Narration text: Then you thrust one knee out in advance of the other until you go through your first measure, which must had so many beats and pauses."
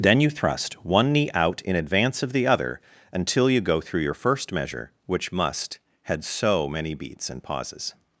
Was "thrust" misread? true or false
false